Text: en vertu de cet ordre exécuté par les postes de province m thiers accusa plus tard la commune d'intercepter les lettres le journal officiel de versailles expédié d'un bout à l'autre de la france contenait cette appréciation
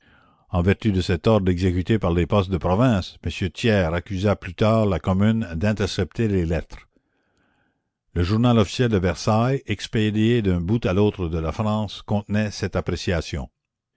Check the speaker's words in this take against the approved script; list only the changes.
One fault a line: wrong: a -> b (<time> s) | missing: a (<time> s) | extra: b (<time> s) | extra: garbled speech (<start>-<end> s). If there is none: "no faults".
no faults